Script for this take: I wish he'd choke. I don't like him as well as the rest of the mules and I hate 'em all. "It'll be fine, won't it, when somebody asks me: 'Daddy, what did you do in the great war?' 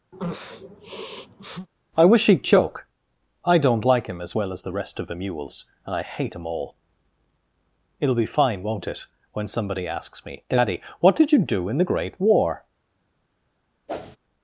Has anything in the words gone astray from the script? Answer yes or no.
no